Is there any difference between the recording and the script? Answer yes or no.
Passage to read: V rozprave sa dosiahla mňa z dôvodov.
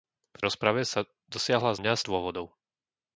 no